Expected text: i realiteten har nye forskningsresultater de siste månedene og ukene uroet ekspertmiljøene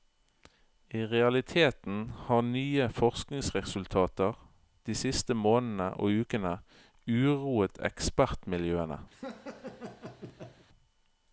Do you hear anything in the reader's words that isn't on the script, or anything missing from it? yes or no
no